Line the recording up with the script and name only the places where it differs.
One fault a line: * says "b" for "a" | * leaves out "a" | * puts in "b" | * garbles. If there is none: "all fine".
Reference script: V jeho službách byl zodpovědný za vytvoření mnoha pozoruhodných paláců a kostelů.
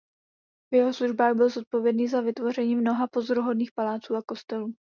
all fine